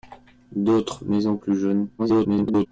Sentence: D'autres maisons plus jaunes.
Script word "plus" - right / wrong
right